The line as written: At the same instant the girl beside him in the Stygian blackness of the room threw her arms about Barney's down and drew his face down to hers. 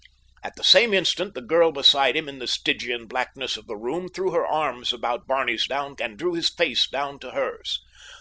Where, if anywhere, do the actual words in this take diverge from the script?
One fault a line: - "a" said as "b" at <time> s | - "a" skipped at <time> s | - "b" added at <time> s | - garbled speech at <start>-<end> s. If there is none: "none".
none